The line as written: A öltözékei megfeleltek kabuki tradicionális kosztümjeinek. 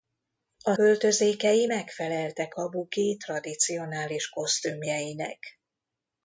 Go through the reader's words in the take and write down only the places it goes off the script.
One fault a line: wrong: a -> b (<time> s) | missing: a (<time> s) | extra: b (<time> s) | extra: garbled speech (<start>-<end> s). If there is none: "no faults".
no faults